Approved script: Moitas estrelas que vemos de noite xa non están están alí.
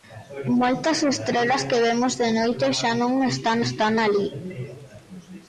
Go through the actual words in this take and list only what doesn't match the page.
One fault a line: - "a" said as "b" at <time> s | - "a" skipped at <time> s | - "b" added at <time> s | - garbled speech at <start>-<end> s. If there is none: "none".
none